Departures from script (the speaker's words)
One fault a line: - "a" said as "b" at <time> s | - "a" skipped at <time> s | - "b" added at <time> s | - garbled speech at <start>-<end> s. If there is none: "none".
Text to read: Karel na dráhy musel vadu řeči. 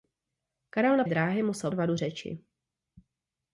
none